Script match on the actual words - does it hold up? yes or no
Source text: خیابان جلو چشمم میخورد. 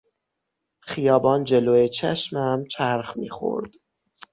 no